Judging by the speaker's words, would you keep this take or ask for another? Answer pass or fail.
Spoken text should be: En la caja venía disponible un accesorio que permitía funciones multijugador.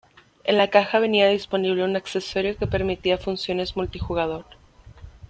pass